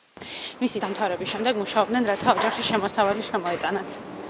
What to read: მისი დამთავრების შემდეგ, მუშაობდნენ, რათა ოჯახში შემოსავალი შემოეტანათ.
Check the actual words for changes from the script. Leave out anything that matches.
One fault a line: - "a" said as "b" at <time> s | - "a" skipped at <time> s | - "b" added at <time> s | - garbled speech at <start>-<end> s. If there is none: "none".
none